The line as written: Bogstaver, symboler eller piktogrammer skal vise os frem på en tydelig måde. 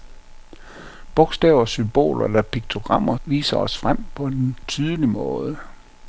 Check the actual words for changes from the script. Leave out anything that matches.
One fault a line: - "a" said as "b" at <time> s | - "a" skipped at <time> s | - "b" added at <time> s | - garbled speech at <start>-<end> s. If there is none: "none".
- "skal" skipped at 3.2 s